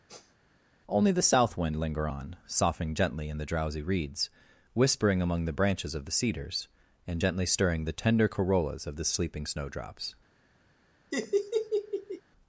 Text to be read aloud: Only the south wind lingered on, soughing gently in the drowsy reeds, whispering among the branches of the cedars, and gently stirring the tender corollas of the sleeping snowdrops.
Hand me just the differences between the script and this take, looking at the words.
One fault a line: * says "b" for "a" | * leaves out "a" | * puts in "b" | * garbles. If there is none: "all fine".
* says "linger" for "lingered"